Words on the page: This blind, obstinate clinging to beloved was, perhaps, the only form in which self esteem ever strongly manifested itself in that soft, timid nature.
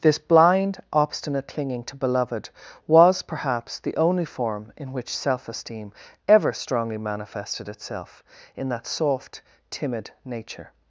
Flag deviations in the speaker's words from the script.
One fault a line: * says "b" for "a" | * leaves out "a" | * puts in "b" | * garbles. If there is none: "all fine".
all fine